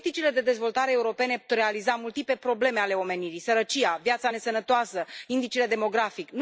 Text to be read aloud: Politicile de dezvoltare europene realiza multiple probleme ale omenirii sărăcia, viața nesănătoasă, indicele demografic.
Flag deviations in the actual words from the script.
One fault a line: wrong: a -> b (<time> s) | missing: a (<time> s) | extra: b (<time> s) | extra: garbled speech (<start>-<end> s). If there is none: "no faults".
no faults